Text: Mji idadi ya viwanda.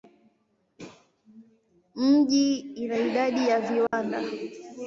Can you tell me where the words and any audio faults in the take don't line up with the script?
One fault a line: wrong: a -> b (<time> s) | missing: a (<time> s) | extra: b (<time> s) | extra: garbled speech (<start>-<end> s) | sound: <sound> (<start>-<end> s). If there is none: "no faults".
extra: ina (2.6 s)
sound: dropout (3.9-3.9 s)